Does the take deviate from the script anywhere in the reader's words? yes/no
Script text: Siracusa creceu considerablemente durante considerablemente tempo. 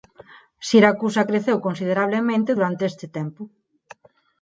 yes